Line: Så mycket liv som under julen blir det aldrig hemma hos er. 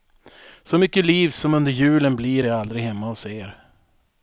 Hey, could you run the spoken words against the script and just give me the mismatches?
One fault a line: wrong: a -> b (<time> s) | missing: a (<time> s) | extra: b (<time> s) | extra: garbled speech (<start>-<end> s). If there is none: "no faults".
no faults